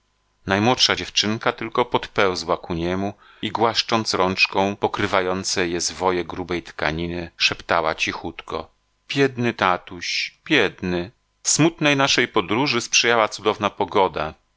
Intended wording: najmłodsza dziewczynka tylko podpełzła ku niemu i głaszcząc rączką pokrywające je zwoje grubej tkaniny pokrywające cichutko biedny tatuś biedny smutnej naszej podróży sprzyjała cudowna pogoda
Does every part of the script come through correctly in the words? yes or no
no